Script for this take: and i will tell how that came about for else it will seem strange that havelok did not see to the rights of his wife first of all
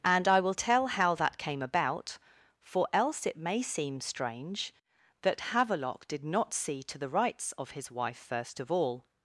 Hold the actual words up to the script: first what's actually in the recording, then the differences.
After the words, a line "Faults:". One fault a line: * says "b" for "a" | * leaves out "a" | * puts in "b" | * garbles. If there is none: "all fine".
and i will tell how that came about for else it may seem strange that havelok did not see to the rights of his wife first of all
Faults:
* says "may" for "will"